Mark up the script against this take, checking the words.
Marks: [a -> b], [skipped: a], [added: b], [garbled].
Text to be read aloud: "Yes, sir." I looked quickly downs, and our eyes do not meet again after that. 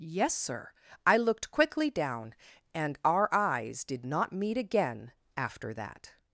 "Yes, sir." I looked quickly [downs, -> down] and our eyes [do -> did] not meet again after that.